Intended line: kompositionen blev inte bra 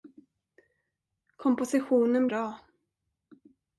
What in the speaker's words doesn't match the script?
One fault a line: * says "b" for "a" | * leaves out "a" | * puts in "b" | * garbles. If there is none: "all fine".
* leaves out "blev inte"